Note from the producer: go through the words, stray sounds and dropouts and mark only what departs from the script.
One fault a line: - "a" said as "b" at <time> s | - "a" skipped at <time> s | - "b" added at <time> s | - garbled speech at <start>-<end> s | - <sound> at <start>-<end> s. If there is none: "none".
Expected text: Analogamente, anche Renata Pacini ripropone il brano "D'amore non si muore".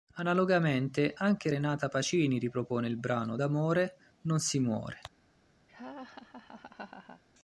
- laugh at 5.7-7.2 s